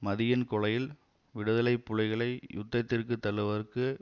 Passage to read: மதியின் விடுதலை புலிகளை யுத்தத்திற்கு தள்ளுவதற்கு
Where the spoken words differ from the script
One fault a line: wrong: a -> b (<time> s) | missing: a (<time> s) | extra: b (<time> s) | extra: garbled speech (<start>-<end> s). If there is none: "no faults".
extra: கொலையில் (0.5 s)